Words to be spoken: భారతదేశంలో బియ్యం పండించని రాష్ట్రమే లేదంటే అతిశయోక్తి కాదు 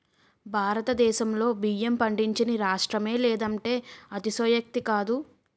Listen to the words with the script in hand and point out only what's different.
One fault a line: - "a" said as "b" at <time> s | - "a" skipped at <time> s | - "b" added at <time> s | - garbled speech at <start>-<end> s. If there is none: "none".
none